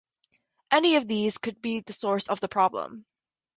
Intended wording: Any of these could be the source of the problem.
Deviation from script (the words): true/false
false